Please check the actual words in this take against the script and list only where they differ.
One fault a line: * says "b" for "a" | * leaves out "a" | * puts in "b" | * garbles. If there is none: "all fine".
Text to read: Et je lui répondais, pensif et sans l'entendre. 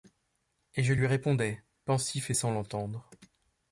all fine